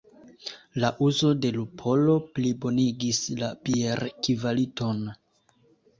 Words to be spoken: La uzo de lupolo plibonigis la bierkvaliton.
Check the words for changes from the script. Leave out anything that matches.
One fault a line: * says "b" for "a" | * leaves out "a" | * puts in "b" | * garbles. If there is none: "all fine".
all fine